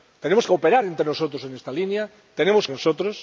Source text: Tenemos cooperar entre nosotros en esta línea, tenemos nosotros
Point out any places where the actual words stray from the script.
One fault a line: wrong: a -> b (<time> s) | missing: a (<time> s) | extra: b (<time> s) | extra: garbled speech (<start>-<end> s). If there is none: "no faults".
no faults